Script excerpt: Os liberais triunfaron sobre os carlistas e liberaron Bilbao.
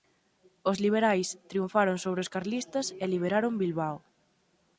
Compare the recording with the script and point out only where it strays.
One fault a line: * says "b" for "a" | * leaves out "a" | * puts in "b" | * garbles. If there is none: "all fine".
all fine